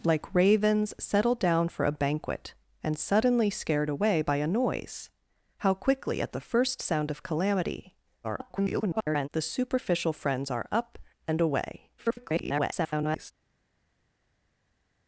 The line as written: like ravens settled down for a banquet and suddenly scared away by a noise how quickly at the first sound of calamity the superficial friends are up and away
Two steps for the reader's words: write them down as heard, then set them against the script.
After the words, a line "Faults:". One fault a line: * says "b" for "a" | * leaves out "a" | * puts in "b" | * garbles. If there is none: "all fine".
like ravens settled down for a banquet and suddenly scared away by a noise how quickly at the first sound of calamity [garbled] the superficial friends are up and away [garbled]
Faults:
* garbles
* garbles